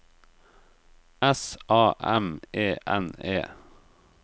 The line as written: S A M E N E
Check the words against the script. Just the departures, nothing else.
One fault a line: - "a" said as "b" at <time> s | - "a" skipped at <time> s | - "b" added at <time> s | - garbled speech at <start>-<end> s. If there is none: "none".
none